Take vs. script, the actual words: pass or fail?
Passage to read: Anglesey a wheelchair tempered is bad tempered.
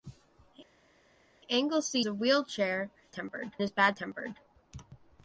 pass